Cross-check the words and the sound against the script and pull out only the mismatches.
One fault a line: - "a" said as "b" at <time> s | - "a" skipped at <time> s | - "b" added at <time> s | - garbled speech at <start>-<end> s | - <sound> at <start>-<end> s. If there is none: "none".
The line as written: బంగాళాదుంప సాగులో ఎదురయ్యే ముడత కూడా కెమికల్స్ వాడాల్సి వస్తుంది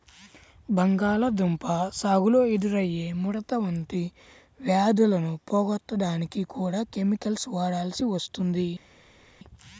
- "వంటి వ్యాధులను పోగొట్టడానికి" added at 3.6 s